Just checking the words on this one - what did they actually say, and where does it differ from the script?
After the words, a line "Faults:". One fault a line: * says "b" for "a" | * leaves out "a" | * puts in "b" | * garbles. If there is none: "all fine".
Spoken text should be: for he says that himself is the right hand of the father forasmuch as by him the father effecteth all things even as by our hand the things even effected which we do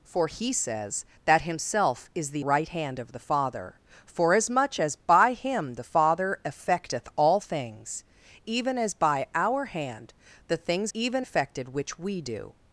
for he says that himself is the right hand of the father forasmuch as by him the father effecteth all things even as by our hand the things even effected which we do
Faults:
all fine